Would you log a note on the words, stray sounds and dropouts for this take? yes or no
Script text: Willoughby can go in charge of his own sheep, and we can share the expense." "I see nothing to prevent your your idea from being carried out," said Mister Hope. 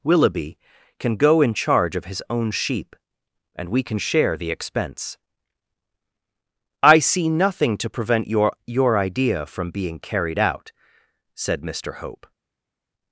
no